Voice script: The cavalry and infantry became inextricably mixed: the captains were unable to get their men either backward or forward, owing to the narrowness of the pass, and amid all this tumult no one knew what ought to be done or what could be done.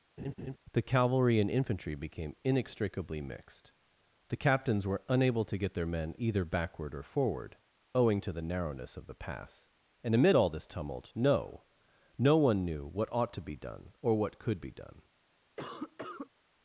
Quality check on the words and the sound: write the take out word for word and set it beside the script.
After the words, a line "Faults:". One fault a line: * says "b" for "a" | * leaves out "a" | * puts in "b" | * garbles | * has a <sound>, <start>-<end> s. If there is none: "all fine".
The cavalry and infantry became inextricably mixed: the captains were unable to get their men either backward or forward, owing to the narrowness of the pass, and amid all this tumult no no one knew what ought to be done or what could be done.
Faults:
* has a laugh, 0.2-0.6 s
* puts in "no"
* has a cough, 15.6-16.3 s